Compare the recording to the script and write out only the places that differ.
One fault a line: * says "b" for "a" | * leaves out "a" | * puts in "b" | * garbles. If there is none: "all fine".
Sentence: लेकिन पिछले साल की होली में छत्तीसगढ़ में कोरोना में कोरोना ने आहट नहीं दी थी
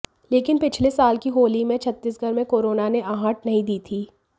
* leaves out "में कोरोना"